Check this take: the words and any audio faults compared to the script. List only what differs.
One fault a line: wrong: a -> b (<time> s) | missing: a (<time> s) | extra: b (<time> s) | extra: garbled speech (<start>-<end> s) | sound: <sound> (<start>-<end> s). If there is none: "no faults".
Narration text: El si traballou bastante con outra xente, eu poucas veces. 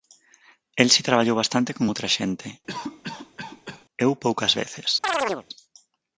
sound: cough (2.7-3.9 s)
sound: chirp (5.0-5.5 s)